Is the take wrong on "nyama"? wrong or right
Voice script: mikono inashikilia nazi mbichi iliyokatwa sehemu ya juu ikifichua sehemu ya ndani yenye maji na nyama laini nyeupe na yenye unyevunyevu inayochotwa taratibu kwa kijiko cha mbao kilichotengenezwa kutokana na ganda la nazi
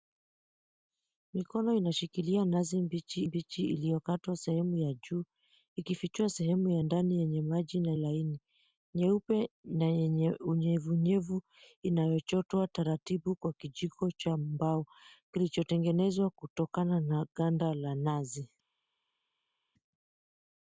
wrong